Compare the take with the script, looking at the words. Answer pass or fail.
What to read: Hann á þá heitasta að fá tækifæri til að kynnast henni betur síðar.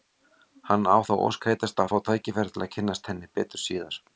fail